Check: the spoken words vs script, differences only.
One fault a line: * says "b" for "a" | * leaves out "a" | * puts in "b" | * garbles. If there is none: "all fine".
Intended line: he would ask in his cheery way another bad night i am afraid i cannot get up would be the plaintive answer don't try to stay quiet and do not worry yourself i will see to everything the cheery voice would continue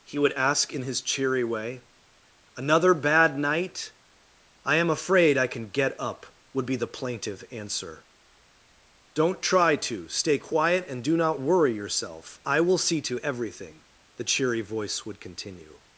* says "can" for "cannot"